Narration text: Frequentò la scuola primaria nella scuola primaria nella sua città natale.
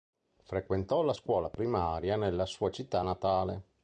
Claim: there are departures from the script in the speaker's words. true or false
true